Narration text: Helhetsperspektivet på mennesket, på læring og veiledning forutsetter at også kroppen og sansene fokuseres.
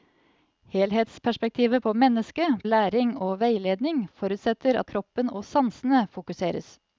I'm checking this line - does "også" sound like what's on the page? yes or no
no